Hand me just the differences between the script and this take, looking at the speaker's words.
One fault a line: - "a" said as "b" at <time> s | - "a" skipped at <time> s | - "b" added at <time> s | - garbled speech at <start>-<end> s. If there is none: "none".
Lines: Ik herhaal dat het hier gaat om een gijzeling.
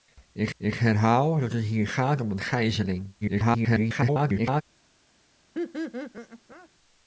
- "ik" added at 0.6 s
- garbled speech at 3.2-4.6 s